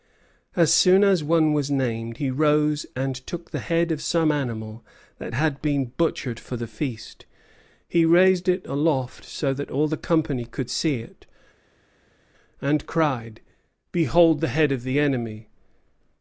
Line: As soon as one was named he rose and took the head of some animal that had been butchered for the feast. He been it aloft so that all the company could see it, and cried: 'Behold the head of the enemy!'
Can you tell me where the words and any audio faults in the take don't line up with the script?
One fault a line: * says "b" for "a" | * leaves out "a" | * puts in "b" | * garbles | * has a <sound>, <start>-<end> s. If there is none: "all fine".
* says "raised" for "been"